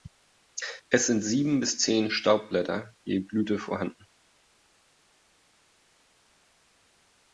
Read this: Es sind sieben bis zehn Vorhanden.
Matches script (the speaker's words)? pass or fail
fail